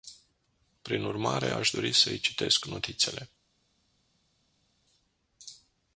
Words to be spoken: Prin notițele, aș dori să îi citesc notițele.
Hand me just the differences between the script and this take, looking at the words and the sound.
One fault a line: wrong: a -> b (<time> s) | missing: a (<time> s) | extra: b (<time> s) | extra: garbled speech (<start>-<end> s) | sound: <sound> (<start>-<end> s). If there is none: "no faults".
wrong: notițele -> urmare (1.0 s)